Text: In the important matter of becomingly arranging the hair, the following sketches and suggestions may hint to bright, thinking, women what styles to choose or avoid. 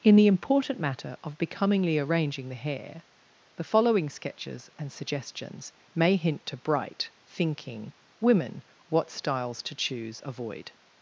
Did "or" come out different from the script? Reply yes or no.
yes